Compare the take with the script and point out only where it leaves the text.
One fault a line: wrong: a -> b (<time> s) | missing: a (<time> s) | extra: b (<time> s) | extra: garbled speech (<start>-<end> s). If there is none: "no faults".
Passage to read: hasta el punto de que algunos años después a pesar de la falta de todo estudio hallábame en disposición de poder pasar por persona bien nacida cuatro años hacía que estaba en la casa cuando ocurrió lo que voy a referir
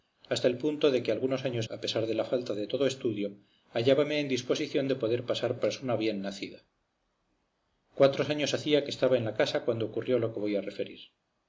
missing: después (1.7 s)
missing: por (5.6 s)